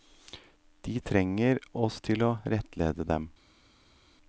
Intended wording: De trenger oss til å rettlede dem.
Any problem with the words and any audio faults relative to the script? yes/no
no